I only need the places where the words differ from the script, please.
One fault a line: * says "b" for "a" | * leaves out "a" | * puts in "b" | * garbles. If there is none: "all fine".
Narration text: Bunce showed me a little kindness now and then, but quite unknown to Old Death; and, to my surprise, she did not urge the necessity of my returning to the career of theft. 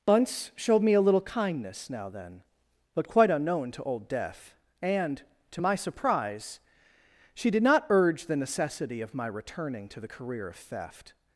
* leaves out "and"